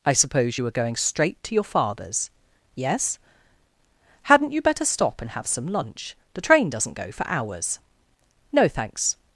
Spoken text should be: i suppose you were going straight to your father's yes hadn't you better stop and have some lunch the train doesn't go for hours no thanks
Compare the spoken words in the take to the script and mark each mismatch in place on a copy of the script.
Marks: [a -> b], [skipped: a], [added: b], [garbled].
i suppose you were going straight to your father's yes hadn't you better stop and have some lunch the train doesn't go for hours no thanks